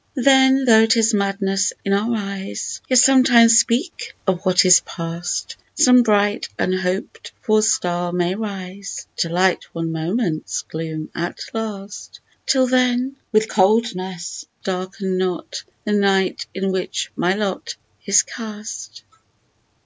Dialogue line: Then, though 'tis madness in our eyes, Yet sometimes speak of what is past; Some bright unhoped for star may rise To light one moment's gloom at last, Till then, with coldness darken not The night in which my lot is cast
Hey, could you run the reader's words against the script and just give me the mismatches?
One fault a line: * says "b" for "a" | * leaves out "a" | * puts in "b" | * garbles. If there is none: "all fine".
all fine